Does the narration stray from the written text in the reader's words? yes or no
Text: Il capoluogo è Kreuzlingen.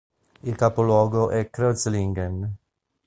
no